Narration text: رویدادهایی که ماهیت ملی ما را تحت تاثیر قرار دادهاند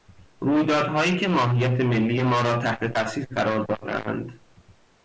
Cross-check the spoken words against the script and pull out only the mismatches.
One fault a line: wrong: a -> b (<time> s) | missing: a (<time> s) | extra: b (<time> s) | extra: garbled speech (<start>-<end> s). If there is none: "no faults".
no faults